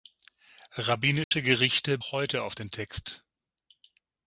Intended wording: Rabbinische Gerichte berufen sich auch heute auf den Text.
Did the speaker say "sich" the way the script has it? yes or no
no